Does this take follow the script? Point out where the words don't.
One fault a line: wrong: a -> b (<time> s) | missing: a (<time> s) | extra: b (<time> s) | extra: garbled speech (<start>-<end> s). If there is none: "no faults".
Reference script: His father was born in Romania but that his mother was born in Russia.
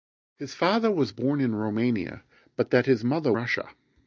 missing: was born in (3.3 s)